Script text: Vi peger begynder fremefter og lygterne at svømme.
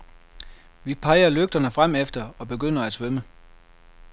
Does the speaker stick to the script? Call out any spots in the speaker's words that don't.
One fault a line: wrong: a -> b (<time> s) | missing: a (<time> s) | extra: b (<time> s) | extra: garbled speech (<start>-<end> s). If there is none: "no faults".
wrong: begynder -> lygterne (1.3 s)
wrong: lygterne -> begynder (2.5 s)